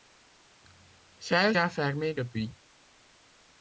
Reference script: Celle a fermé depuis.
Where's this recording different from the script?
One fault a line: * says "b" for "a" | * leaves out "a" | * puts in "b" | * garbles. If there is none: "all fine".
all fine